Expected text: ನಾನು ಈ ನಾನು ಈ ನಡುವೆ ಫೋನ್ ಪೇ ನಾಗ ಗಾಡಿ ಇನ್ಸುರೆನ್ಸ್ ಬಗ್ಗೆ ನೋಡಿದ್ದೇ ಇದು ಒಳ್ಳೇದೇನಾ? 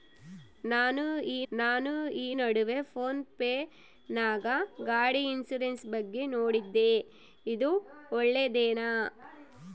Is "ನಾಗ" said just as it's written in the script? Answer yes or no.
yes